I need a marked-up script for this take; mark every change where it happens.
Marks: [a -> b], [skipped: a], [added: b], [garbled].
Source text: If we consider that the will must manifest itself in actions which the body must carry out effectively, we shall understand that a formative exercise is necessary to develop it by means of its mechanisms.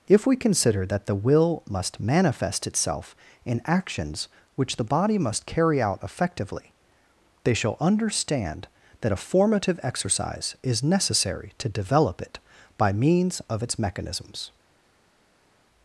If we consider that the will must manifest itself in actions which the body must carry out effectively, [we -> they] shall understand that a formative exercise is necessary to develop it by means of its mechanisms.